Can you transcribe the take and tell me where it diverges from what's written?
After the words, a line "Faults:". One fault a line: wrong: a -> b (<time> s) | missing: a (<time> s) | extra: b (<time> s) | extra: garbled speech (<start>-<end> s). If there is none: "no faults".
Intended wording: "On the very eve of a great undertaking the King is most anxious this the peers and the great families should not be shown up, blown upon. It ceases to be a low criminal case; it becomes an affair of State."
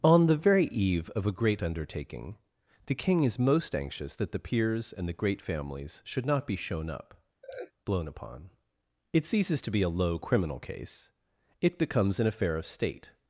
"On the very eve of a great undertaking the King is most anxious that the peers and the great families should not be shown up, blown upon. It ceases to be a low criminal case; it becomes an affair of State."
Faults:
wrong: this -> that (4.2 s)